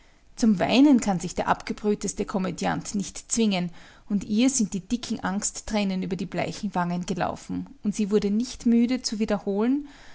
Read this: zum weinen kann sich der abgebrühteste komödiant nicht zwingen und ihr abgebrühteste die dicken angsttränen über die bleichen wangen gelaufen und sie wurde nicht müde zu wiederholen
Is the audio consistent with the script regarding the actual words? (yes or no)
no